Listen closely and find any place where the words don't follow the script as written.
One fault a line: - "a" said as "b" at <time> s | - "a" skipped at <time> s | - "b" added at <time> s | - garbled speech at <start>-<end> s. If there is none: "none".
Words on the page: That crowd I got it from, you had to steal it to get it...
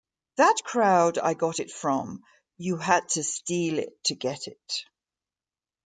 none